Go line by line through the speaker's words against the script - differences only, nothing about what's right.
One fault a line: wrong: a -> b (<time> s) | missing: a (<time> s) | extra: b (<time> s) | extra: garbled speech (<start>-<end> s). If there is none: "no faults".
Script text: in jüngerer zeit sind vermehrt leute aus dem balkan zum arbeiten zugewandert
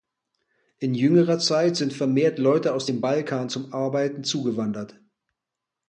no faults